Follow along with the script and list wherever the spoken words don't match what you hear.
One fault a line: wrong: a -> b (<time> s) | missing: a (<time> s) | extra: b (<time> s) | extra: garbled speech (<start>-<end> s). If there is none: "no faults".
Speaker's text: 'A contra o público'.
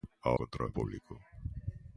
no faults